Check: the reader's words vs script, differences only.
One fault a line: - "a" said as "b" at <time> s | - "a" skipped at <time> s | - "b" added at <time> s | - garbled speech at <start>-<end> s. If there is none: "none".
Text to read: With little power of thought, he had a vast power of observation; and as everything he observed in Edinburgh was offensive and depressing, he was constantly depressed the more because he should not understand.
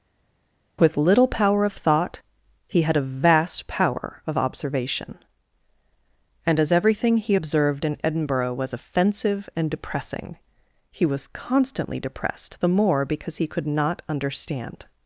- "should" said as "could" at 13.5 s